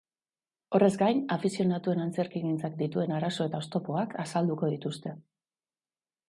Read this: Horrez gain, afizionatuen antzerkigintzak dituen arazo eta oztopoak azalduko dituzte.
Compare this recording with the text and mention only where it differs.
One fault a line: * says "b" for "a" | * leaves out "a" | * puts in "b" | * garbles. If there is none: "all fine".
all fine